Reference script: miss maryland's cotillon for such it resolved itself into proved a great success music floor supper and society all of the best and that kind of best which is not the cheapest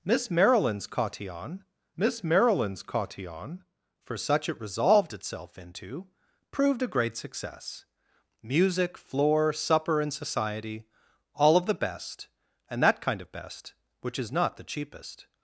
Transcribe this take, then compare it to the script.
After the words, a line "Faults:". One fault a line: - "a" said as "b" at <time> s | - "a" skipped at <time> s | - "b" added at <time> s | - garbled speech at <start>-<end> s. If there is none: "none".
miss maryland's cotillon miss maryland's cotillon for such it resolved itself into proved a great success music floor supper and society all of the best and that kind of best which is not the cheapest
Faults:
- "miss maryland's cotillon" added at 1.9 s